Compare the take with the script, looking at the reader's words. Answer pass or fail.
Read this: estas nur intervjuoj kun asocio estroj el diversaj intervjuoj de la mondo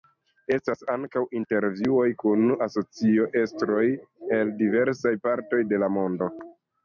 fail